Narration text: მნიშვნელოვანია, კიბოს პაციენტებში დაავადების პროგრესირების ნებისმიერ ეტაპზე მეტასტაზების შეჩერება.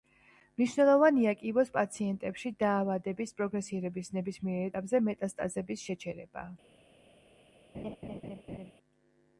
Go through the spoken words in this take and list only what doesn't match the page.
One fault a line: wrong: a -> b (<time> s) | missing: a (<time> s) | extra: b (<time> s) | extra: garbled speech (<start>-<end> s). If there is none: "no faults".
no faults